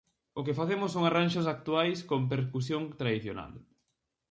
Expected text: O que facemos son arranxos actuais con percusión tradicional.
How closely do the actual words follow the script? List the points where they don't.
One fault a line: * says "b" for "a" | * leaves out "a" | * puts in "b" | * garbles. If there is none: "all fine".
all fine